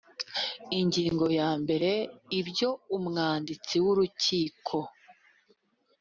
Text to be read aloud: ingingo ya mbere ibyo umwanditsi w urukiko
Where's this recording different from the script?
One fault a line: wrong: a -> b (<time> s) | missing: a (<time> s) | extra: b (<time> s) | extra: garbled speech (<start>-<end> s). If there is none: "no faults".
no faults